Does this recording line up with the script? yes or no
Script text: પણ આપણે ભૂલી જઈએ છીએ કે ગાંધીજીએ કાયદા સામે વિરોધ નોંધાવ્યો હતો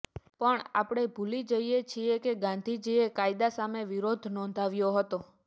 yes